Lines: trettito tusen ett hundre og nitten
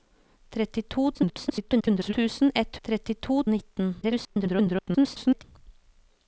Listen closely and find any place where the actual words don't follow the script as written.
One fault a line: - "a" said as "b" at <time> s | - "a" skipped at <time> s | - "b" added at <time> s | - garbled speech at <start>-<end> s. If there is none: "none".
- garbled speech at 1.1-2.1 s
- "hundre" said as "trettito" at 2.8 s
- garbled speech at 4.0-5.4 s